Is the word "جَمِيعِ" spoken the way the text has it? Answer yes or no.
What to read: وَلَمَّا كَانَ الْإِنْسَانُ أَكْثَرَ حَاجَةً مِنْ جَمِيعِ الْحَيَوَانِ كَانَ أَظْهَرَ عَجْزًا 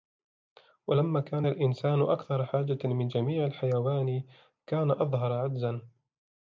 yes